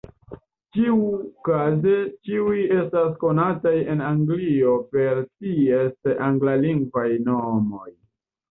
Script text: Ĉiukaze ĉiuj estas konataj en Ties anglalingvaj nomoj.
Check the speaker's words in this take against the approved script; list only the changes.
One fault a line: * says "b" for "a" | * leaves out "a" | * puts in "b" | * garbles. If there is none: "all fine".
* puts in "Anglio per"